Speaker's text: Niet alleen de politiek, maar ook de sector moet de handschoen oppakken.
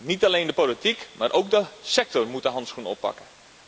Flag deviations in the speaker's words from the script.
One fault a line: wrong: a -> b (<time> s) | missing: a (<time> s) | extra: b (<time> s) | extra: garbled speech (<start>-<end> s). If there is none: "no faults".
no faults